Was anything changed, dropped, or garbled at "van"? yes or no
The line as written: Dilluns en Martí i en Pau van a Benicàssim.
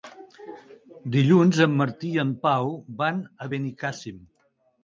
no